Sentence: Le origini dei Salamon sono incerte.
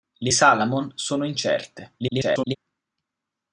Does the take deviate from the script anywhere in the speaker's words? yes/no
yes